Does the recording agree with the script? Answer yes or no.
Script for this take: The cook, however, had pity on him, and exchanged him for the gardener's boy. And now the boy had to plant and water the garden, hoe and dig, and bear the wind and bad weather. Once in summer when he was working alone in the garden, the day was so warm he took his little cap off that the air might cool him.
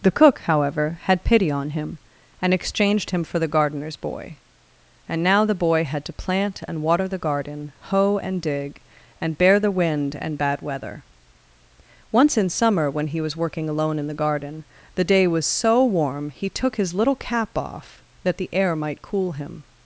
yes